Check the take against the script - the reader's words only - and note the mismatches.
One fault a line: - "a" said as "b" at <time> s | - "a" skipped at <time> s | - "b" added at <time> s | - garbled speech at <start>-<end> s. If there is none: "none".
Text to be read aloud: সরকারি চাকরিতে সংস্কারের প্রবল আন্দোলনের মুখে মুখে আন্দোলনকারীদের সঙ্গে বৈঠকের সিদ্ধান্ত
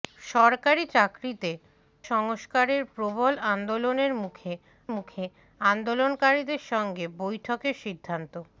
none